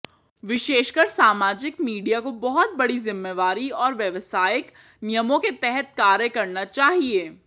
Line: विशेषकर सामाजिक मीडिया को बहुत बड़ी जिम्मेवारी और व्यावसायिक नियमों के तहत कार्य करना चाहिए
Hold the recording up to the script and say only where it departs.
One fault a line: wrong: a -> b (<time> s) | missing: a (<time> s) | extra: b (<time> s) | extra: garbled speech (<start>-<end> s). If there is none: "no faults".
no faults